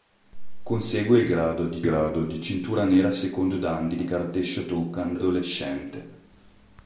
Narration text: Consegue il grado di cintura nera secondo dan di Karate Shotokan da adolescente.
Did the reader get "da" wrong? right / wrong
wrong